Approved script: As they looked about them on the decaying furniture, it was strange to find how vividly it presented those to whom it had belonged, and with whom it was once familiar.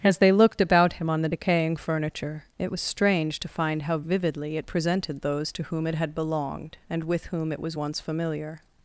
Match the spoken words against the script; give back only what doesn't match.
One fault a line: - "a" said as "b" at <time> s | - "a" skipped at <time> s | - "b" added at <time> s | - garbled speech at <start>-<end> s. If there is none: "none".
- "them" said as "him" at 0.9 s